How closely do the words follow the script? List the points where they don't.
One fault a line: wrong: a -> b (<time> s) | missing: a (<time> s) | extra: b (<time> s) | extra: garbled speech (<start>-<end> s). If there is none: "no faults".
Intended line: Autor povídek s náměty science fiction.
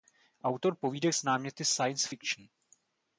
no faults